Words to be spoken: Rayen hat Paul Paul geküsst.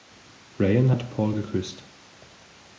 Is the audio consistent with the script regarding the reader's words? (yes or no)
no